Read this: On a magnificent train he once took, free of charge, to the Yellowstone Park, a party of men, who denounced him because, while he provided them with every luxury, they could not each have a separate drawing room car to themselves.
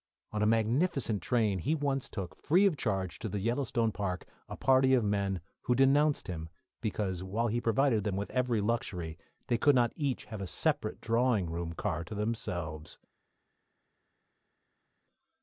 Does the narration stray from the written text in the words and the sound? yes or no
no